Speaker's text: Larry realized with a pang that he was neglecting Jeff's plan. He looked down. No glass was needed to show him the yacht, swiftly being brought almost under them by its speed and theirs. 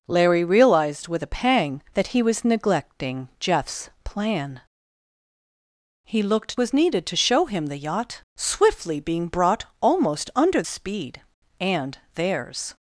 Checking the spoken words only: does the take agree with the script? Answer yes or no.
no